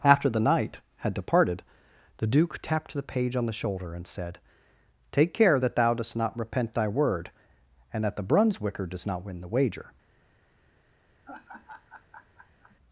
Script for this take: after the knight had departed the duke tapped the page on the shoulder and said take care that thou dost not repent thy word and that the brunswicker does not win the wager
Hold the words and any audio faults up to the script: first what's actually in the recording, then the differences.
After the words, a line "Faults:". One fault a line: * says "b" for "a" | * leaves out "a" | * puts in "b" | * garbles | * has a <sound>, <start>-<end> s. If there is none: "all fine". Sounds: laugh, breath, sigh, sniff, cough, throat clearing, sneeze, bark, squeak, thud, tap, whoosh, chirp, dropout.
after the knight had departed the duke tapped the page on the shoulder and said take care that thou dost not repent thy word and that the brunswicker does not win the wager
Faults:
* has a laugh, 11.2-12.8 s